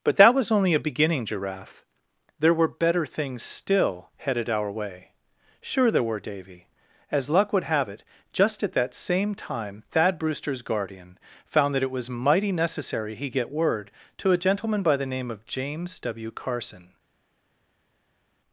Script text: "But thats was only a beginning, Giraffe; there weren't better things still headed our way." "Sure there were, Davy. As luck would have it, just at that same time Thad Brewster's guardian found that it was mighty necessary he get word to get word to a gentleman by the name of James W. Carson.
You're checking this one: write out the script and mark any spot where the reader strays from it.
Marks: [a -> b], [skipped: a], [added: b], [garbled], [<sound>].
"But [thats -> that] was only a beginning, Giraffe; there [weren't -> were] better things still headed our way." "Sure there were, Davy. As luck would have it, just at that same time Thad Brewster's guardian found that it was mighty necessary he get word to [skipped: get word to] a gentleman by the name of James W. Carson.